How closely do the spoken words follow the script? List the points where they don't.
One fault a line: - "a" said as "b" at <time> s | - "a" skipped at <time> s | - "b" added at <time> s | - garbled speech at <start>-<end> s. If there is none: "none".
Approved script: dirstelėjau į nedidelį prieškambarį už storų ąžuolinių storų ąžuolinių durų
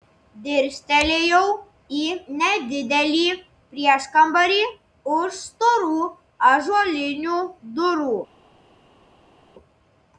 - "storų ąžuolinių" skipped at 7.4 s